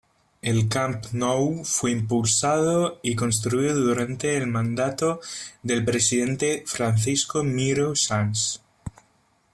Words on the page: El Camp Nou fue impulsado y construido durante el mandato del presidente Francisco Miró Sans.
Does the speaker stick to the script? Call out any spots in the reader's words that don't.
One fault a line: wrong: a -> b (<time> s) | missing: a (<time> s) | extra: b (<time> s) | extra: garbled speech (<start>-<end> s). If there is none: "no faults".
no faults